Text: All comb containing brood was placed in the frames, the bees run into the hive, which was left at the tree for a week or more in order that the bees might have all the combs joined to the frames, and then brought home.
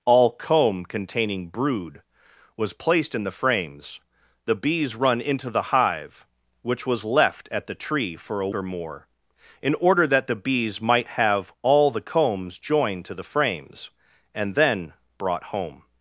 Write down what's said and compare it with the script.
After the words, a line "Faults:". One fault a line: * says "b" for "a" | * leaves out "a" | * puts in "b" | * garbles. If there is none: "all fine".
All comb containing brood was placed in the frames, the bees run into the hive, which was left at the tree for a or more in order that the bees might have all the combs joined to the frames, and then brought home.
Faults:
* leaves out "week"